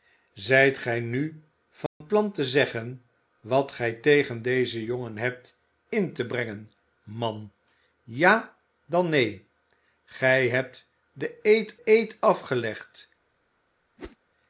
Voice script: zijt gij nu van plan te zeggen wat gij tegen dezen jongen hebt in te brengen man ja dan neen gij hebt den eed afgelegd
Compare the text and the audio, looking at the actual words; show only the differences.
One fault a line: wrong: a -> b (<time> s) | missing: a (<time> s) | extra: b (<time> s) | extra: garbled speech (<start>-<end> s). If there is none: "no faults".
extra: eed (11.8 s)